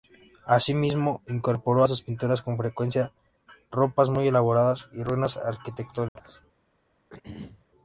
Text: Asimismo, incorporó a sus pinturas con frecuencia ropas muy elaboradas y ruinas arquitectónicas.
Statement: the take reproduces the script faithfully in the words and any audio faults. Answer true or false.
false